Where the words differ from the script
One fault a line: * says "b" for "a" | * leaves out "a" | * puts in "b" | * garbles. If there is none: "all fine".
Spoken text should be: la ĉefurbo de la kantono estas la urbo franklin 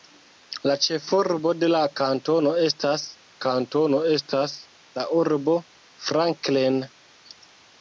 * puts in "kantono estas"